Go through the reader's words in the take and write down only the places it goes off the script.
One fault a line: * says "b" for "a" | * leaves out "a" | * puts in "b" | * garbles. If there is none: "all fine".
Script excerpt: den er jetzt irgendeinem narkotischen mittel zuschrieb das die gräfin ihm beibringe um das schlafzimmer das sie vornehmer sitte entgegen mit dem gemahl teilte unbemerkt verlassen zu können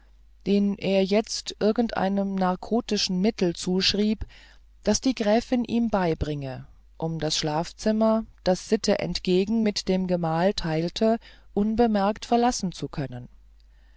* leaves out "sie vornehmer"